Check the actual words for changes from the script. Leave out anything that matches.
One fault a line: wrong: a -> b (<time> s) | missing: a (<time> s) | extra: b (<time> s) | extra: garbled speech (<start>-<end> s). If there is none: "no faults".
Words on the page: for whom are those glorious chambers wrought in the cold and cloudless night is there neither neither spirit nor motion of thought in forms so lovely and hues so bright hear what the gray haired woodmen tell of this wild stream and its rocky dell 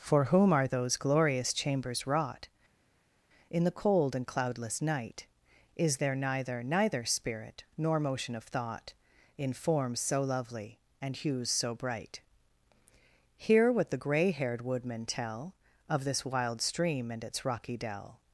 no faults